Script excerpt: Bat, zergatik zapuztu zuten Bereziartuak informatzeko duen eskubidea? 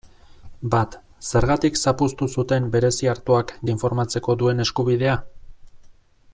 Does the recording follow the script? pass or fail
pass